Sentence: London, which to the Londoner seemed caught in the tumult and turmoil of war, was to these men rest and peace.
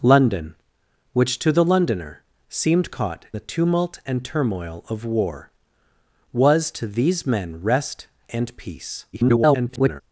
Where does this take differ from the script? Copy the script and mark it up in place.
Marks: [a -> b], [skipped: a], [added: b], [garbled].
London, which to the Londoner seemed caught [skipped: in] the tumult and turmoil of war, was to these men rest and peace. [garbled]